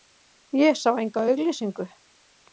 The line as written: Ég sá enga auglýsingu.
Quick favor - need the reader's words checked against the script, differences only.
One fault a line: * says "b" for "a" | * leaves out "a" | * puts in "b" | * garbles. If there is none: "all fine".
all fine